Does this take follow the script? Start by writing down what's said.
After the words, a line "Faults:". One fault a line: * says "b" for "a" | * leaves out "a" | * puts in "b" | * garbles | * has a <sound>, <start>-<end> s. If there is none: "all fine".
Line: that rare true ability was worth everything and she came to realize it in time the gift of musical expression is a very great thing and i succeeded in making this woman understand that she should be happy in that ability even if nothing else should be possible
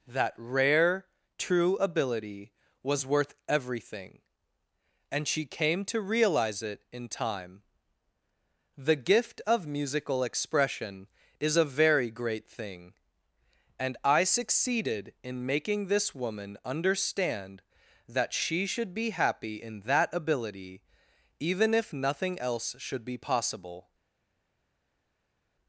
that rare true ability was worth everything and she came to realize it in time the gift of musical expression is a very great thing and i succeeded in making this woman understand that she should be happy in that ability even if nothing else should be possible
Faults:
all fine